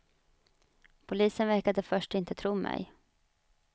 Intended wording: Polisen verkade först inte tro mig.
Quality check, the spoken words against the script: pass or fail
pass